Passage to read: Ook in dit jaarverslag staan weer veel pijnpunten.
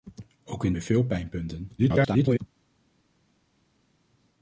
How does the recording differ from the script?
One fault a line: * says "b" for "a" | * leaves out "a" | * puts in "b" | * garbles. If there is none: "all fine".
* leaves out "dit jaarverslag staan"
* garbles